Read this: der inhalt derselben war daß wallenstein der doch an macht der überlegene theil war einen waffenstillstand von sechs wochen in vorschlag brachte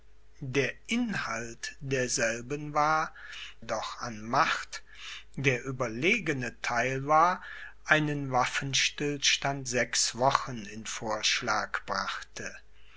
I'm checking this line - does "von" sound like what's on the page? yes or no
no